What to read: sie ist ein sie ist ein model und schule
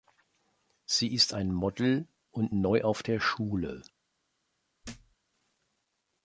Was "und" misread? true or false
true